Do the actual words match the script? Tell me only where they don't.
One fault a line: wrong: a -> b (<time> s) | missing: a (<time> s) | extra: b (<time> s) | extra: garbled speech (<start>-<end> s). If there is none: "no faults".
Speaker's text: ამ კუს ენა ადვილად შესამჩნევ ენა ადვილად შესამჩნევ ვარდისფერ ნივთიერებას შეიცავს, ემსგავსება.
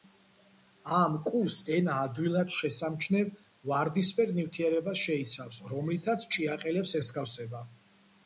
missing: ენა ადვილად შესამჩნევ (3.3 s)
extra: რომლითაც ჭიაყელებს (5.8 s)